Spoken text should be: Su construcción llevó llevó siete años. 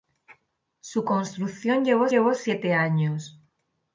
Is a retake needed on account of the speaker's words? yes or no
no